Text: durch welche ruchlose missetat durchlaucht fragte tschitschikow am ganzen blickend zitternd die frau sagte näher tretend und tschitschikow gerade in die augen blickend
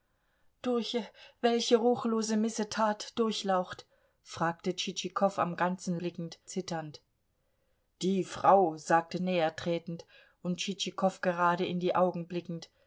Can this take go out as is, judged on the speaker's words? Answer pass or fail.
pass